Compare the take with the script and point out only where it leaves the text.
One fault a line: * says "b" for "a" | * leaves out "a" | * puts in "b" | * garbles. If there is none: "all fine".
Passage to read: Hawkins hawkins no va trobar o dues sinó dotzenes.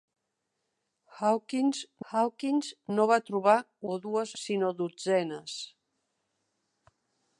all fine